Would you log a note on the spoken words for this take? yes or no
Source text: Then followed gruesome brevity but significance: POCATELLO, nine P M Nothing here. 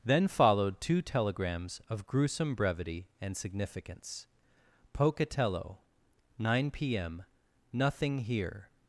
yes